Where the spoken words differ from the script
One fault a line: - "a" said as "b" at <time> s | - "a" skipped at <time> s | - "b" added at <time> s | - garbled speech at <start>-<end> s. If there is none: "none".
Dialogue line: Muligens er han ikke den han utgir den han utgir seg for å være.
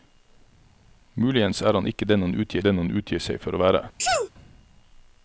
none